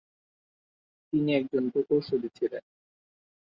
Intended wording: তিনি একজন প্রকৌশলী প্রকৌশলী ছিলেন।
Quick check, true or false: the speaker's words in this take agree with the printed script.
false